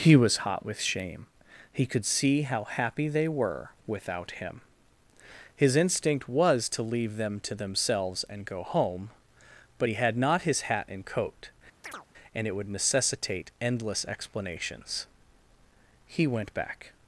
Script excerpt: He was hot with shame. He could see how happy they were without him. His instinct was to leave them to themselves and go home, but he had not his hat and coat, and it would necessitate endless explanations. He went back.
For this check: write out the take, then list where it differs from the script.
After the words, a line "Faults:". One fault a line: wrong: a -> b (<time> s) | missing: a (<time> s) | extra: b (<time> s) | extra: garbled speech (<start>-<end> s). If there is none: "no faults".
He was hot with shame. He could see how happy they were without him. His instinct was to leave them to themselves and go home, but he had not his hat and coat, and it would necessitate endless explanations. He went back.
Faults:
no faults